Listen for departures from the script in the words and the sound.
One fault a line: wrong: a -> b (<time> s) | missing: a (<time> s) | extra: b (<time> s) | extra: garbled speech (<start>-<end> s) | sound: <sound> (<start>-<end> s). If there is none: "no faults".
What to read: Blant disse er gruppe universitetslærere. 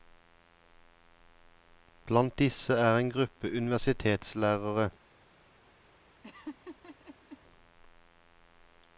extra: en (3.0 s)
sound: laugh (6.2-7.4 s)